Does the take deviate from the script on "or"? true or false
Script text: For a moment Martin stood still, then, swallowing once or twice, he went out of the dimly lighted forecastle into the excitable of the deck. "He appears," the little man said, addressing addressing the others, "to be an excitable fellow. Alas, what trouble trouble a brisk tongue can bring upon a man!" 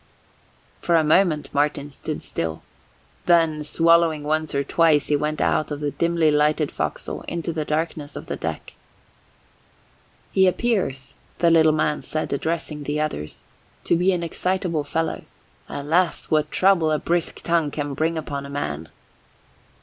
false